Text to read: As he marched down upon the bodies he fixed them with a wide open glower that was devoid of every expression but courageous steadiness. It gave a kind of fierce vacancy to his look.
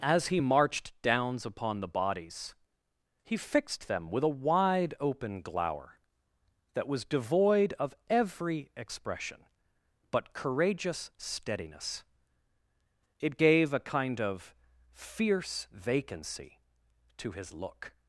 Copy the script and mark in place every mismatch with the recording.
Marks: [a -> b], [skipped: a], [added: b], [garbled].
As he marched [down -> downs] upon the bodies he fixed them with a wide open glower that was devoid of every expression but courageous steadiness. It gave a kind of fierce vacancy to his look.